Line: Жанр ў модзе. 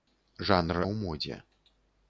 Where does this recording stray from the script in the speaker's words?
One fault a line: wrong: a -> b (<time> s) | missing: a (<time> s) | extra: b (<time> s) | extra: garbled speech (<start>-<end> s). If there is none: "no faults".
no faults